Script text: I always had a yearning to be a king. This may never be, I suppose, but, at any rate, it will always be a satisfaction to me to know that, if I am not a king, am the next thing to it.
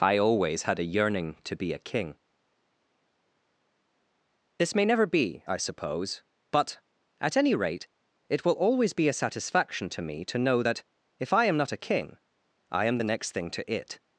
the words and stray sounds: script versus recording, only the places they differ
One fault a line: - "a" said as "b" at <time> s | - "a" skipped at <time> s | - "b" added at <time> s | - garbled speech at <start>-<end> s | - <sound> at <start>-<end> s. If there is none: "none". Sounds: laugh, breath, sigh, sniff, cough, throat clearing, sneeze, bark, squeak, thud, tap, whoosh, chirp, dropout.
- "I" added at 12.7 s